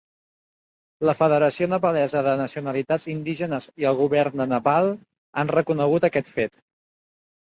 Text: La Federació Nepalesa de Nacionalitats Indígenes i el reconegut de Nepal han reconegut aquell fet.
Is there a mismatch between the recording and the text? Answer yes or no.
yes